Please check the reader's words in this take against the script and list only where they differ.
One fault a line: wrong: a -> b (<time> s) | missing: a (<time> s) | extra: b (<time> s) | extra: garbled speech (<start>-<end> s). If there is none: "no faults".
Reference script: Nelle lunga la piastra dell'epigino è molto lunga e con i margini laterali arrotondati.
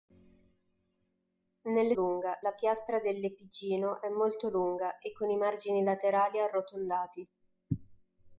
no faults